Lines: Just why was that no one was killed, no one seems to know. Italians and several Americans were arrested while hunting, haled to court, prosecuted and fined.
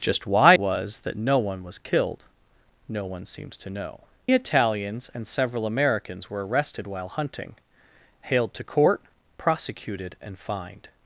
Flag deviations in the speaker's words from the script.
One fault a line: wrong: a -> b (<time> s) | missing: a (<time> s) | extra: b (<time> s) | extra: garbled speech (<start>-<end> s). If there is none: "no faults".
no faults